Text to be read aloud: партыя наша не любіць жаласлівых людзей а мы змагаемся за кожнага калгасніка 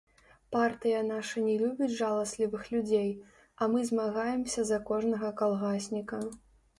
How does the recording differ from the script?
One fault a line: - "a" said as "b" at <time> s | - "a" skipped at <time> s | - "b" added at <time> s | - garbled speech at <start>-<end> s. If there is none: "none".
none